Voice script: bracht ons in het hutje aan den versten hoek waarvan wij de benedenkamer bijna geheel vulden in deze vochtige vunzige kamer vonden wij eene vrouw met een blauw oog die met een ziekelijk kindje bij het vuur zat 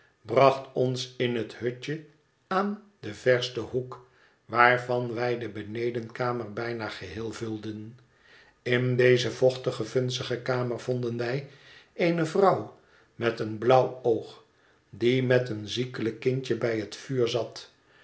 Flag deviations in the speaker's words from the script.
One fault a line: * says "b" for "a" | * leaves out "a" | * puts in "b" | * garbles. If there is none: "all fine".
all fine